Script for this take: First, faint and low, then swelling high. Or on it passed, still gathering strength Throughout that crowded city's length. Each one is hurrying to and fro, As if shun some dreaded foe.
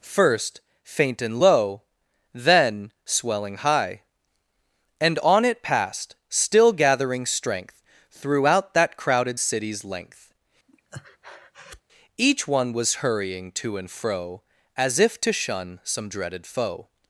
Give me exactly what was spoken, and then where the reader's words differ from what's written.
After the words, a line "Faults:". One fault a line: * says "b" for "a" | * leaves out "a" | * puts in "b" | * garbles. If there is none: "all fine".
First, faint and low, then swelling high. And on it passed, still gathering strength Throughout that crowded city's length. Each one was hurrying to and fro, As if to shun some dreaded foe.
Faults:
* says "And" for "Or"
* says "was" for "is"
* puts in "to"